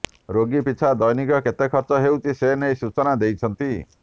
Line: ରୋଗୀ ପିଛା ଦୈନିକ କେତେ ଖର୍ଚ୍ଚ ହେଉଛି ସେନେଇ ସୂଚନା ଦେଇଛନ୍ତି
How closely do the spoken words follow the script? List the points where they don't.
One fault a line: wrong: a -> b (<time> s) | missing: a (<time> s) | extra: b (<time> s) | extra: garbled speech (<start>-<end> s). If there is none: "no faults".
no faults